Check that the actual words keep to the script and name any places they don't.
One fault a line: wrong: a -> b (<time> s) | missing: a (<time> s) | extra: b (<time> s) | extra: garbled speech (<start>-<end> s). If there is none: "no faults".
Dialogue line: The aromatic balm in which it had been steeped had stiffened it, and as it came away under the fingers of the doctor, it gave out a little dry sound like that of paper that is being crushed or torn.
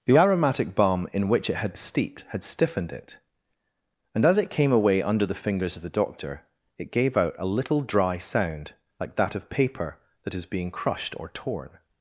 missing: been (1.8 s)